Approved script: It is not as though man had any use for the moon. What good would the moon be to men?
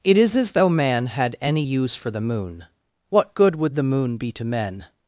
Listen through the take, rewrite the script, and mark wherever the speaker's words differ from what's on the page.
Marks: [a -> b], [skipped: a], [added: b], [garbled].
It is [skipped: not] as though man had any use for the moon. What good would the moon be to men?